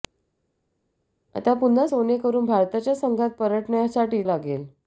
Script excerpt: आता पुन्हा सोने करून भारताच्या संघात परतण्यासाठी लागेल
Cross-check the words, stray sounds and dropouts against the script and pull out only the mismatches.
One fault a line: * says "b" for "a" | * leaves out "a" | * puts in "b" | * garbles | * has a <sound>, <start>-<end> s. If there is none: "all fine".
all fine